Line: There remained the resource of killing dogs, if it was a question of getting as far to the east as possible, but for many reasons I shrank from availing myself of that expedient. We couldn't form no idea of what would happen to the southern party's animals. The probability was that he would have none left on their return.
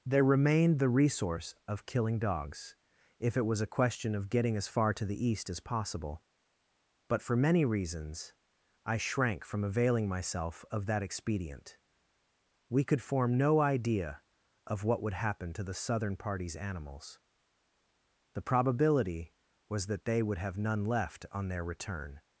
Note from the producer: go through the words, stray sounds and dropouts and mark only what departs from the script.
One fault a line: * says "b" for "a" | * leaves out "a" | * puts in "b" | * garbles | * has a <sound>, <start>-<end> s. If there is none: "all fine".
* says "could" for "couldn't"
* says "they" for "he"